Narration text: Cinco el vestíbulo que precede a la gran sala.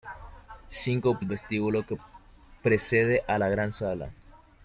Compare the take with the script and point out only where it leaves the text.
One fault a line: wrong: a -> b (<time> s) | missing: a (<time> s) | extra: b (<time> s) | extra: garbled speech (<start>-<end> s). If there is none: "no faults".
no faults